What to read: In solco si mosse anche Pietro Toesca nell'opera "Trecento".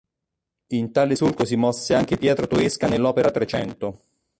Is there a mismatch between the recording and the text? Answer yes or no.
yes